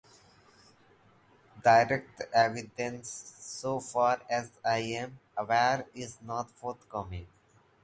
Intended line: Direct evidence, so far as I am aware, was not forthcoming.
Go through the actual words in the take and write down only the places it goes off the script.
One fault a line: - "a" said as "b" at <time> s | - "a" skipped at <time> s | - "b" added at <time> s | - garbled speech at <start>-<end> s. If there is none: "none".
- "was" said as "is" at 5.9 s